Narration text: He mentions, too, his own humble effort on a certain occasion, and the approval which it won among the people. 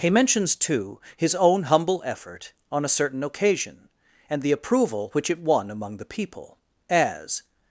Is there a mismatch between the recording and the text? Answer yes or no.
yes